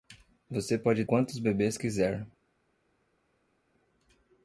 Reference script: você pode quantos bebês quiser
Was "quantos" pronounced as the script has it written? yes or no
yes